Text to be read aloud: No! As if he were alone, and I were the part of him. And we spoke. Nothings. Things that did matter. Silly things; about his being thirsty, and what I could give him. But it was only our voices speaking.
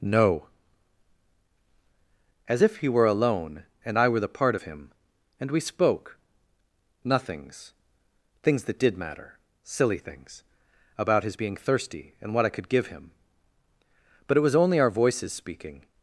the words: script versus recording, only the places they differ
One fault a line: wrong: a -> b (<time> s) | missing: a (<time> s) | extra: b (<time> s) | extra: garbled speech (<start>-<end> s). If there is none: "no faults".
no faults